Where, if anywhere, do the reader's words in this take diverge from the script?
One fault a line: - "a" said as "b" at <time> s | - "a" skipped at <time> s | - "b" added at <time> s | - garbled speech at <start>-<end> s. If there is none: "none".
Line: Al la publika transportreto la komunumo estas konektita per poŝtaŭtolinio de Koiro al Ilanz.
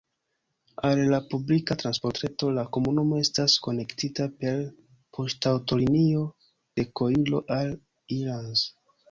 none